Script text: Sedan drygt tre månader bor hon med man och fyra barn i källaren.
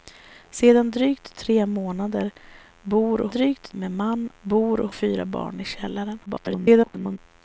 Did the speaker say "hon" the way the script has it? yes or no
no